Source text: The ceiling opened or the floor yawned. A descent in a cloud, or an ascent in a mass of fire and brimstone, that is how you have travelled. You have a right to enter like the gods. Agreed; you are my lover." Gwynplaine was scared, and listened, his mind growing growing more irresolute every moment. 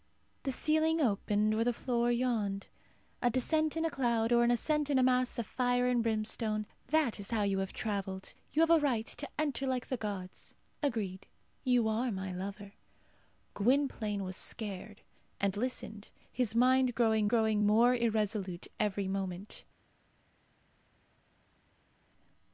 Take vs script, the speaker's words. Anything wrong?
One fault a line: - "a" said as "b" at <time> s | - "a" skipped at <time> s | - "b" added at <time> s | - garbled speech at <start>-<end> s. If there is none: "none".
none